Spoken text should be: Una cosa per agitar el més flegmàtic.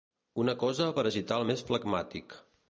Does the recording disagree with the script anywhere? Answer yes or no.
no